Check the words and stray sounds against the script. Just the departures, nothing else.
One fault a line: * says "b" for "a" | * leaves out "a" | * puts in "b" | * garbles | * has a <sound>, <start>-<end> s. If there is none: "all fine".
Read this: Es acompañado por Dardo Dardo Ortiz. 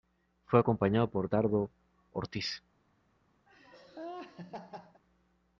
* says "Fue" for "Es"
* leaves out "Dardo"
* has a laugh, 3.5-5.0 s